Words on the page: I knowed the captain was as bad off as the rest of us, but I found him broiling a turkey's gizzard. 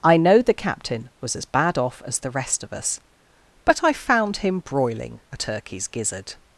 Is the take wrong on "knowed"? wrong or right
wrong